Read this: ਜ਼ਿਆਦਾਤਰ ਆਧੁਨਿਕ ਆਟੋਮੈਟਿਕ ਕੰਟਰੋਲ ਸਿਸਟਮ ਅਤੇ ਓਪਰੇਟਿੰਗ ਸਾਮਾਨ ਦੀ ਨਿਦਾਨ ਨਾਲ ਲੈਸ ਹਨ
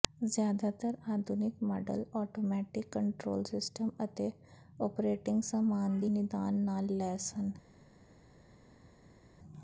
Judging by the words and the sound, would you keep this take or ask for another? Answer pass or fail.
fail